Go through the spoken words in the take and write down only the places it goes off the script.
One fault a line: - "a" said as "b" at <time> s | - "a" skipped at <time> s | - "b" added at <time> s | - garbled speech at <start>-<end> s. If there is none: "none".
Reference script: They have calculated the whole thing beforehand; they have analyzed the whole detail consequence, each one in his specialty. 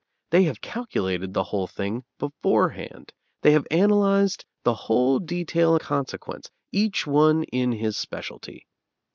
none